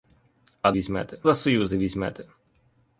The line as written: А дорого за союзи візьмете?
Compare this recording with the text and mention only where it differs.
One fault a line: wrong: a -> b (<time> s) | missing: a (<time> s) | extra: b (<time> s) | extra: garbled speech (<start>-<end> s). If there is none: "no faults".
wrong: дорого -> візьмете (0.7 s)